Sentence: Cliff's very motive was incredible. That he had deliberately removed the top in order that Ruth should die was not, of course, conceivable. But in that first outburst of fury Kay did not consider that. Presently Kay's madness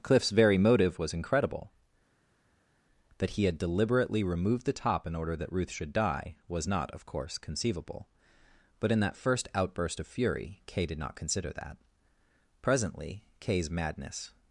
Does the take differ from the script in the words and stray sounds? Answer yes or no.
no